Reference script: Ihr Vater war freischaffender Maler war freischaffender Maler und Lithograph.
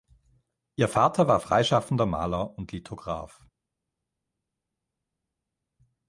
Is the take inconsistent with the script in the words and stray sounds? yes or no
yes